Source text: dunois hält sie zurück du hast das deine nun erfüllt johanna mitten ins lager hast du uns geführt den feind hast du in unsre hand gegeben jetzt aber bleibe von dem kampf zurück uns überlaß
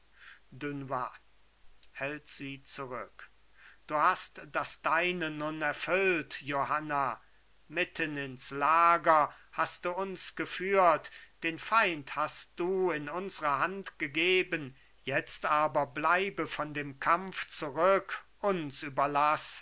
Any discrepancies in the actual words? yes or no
no